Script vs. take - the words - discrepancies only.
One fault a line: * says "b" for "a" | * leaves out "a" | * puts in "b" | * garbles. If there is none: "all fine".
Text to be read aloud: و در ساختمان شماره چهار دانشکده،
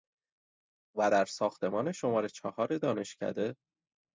all fine